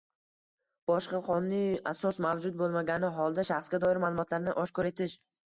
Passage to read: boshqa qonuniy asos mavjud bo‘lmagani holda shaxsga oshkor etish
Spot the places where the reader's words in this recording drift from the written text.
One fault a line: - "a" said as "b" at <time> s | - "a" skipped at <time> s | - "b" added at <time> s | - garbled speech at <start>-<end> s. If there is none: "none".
- "doir ma'lumotlarni" added at 3.9 s